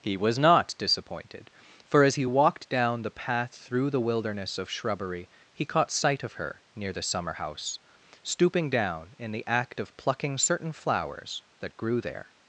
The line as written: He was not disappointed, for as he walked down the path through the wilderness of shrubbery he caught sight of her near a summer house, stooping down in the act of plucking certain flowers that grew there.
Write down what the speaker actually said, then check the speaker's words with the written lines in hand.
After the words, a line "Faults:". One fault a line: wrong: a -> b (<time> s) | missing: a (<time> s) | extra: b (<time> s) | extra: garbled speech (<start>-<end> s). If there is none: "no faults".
He was not disappointed, for as he walked down the path through the wilderness of shrubbery he caught sight of her near the summer house, stooping down in the act of plucking certain flowers that grew there.
Faults:
wrong: a -> the (6.9 s)